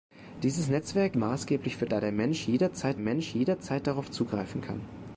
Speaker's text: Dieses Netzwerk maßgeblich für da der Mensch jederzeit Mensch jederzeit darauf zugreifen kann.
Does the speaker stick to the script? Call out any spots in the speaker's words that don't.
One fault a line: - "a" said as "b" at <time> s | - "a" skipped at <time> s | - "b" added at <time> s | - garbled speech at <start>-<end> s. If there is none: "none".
none